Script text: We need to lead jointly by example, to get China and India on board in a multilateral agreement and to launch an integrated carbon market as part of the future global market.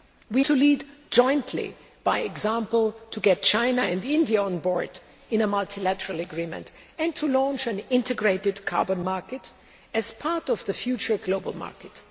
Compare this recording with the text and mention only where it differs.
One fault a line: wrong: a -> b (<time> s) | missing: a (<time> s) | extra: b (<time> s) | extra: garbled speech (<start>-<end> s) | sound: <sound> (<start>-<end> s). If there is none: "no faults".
missing: need (0.5 s)